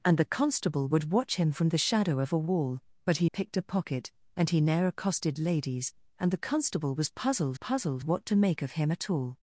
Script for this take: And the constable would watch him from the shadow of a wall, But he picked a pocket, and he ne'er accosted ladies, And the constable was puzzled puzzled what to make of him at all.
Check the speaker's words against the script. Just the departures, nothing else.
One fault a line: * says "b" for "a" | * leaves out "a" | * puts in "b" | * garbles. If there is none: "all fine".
all fine